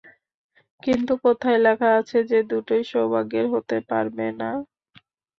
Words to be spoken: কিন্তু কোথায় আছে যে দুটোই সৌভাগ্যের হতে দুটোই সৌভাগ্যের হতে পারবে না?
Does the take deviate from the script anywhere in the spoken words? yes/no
yes